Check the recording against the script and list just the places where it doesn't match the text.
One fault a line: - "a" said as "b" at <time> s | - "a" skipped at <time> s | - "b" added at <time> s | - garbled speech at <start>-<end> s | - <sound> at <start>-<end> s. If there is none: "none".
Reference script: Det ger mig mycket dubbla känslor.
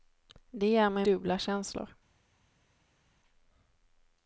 - "mycket" skipped at 1.1 s